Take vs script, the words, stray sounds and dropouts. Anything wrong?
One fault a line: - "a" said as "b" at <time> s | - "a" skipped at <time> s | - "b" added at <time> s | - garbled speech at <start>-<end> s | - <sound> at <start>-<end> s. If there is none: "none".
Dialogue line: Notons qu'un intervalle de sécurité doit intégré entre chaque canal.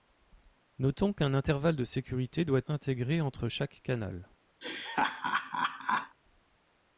- laugh at 4.6-6.2 s